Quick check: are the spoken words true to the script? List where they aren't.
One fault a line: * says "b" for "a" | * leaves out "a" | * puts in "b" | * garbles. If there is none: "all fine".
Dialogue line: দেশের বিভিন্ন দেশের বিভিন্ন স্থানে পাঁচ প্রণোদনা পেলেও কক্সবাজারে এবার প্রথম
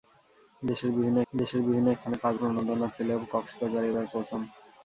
all fine